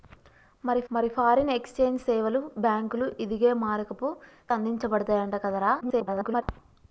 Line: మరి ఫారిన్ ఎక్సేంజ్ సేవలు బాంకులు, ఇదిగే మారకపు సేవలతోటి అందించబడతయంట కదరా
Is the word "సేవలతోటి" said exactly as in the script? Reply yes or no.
no